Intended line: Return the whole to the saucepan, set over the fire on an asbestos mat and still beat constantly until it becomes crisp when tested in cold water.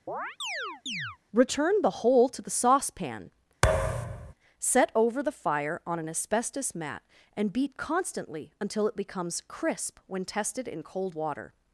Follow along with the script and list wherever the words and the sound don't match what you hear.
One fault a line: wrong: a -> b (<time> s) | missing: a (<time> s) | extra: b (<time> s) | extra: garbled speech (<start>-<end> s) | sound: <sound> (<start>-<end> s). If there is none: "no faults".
sound: chirp (0.1-1.2 s)
sound: thud (3.6-4.3 s)
missing: still (7.5 s)